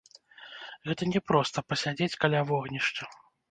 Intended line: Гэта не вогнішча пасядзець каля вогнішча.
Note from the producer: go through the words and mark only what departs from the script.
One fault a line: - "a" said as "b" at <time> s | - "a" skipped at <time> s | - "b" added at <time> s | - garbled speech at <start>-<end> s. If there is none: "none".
- "вогнішча" said as "проста" at 1.3 s